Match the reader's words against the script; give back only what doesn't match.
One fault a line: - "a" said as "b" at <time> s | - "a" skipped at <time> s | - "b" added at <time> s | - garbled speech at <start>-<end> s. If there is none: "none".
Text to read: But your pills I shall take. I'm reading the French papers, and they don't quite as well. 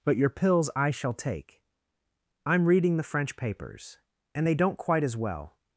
none